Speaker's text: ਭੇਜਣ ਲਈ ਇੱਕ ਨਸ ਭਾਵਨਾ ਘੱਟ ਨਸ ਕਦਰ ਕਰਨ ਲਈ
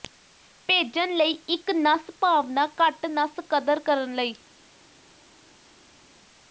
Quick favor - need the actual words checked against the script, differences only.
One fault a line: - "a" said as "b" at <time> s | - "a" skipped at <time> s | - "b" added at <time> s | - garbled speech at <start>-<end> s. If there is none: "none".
none